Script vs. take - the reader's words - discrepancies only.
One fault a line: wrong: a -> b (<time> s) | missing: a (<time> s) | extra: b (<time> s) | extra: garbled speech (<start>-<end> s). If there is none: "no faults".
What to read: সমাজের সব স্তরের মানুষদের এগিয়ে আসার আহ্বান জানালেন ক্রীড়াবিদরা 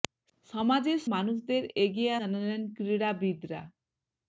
missing: সব স্তরের (1.0 s)
missing: আসার আহ্বান (2.1 s)